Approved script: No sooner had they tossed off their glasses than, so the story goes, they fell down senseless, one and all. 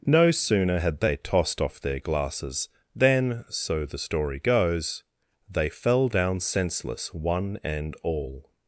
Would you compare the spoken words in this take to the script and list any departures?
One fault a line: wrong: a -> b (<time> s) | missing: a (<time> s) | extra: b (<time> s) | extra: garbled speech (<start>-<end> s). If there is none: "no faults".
no faults